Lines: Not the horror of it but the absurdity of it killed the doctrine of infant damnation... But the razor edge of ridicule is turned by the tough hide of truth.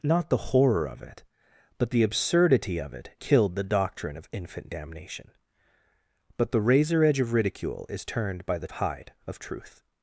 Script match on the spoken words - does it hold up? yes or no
no